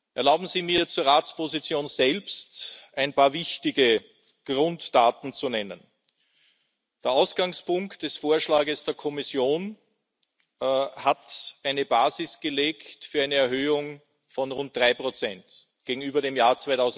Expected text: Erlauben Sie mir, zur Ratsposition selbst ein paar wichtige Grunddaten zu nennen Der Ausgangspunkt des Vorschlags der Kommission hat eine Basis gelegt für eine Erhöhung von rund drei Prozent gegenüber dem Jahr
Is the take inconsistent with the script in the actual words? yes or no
no